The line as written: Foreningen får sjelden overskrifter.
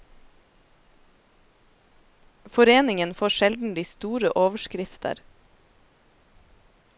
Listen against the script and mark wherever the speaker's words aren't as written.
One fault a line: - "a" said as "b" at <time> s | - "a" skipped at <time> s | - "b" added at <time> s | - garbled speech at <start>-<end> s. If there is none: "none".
- "de store" added at 3.7 s